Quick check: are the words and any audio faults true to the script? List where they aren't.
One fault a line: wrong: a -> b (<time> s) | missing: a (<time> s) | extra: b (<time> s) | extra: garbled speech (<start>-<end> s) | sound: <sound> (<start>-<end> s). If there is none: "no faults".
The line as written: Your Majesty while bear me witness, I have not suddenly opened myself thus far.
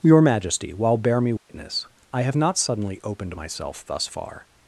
sound: dropout (1.4-1.5 s)